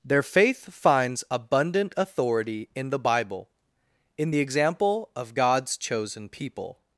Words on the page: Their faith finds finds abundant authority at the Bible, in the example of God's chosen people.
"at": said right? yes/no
no